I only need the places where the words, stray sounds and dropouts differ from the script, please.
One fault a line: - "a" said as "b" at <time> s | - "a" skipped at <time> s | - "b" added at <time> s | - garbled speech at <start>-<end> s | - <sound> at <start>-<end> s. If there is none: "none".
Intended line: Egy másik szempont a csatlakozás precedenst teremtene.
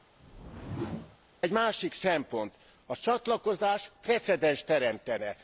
- whoosh at 0.2-1.2 s